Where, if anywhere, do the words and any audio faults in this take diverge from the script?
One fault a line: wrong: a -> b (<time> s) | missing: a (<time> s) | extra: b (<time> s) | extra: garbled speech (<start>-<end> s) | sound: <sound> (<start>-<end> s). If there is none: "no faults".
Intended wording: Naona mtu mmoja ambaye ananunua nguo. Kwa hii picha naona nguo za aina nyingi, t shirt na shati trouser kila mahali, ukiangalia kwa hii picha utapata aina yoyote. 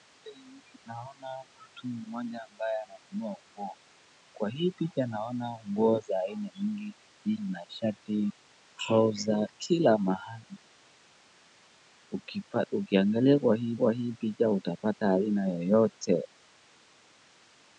missing: shirt (7.4 s)
extra: kwa hii (13.8 s)